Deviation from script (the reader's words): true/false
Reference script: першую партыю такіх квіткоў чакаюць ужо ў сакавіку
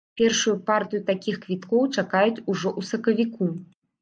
false